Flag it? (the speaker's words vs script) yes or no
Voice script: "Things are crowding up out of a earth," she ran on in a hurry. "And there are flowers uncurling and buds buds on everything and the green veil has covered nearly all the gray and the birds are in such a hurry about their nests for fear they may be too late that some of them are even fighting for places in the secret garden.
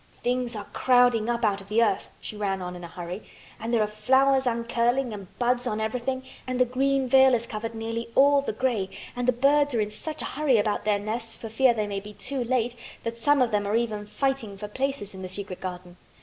yes